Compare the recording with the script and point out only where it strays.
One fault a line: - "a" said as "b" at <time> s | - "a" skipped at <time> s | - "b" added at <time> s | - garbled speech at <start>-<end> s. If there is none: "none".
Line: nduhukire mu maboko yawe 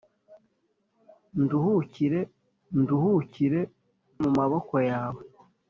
- "nduhukire" added at 2.8 s